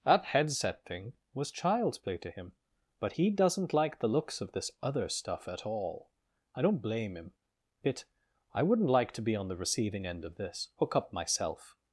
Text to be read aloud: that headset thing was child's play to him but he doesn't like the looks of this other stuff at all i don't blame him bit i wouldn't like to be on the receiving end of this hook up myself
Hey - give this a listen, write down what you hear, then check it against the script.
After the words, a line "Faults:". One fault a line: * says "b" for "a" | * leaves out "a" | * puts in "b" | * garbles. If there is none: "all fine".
that headset thing was child's play to him but he doesn't like the looks of this other stuff at all i don't blame him bit i wouldn't like to be on the receiving end of this hook up myself
Faults:
all fine